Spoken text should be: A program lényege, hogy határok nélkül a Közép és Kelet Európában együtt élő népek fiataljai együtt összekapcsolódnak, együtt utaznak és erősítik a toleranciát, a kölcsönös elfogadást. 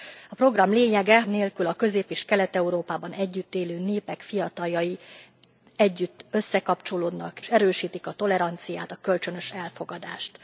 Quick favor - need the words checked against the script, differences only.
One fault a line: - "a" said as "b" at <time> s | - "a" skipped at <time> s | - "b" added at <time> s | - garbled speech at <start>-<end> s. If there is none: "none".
- "hogy határok" skipped at 1.2 s
- "együtt utaznak és" skipped at 7.4 s